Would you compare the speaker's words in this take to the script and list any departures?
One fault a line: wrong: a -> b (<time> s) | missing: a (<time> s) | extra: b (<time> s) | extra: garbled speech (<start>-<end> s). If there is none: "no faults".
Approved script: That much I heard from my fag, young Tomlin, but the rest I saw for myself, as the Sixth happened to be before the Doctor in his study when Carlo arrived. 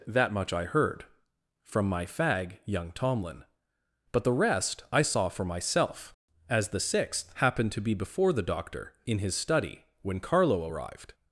no faults